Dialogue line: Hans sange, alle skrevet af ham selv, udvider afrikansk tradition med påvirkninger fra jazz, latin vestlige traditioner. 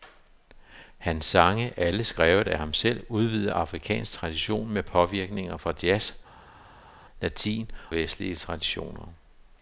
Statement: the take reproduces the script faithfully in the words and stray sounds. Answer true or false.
true